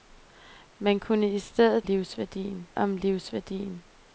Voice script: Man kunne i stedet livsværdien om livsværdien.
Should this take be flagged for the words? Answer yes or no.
no